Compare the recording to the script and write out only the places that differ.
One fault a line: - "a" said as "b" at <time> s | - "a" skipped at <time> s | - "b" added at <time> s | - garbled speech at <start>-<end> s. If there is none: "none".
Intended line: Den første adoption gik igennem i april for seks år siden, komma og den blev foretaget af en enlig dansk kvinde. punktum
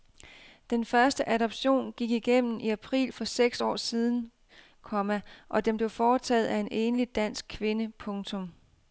none